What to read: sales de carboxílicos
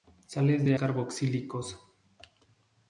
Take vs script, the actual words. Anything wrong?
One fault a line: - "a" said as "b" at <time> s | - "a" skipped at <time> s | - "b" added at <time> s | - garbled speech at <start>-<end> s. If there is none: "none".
none